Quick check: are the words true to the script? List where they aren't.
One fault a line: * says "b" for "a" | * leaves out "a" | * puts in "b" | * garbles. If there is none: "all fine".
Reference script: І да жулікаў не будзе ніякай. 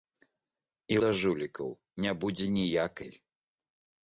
all fine